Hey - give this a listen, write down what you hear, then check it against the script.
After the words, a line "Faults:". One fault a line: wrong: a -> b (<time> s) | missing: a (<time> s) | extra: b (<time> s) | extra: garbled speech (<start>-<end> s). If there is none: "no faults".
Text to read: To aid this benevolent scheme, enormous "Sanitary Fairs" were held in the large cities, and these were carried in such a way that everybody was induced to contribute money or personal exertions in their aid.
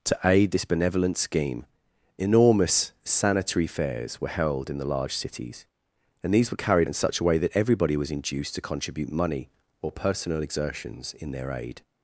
To aid this benevolent scheme, enormous "Sanitary Fairs" were held in the large cities, and these were carried in such a way that everybody was induced to contribute money or personal exertions in their aid.
Faults:
no faults